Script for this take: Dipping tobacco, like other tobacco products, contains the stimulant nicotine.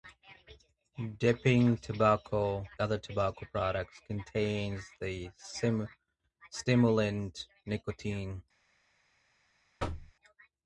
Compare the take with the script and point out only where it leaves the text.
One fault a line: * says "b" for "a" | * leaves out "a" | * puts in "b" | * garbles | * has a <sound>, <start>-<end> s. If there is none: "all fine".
* leaves out "like"
* has a thud, 9.8-10.1 s